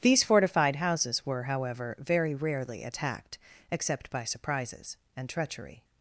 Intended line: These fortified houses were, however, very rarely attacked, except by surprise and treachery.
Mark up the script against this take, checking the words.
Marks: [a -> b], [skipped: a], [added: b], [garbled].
These fortified houses were, however, very rarely attacked, except by [surprise -> surprises] and treachery.